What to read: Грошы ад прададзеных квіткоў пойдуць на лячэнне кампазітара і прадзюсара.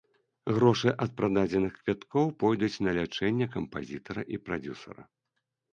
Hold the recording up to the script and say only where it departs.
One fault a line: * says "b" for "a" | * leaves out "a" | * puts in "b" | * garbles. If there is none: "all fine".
all fine